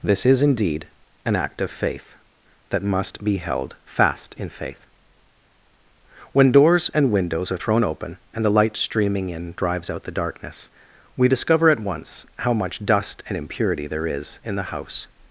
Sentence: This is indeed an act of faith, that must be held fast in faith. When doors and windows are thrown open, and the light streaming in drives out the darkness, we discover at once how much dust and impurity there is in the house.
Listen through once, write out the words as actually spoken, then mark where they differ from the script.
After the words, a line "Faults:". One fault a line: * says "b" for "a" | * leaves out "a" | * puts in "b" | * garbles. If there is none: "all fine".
This is indeed an act of faith, that must be held fast in faith. When doors and windows are thrown open, and the light streaming in drives out the darkness, we discover at once how much dust and impurity there is in the house.
Faults:
all fine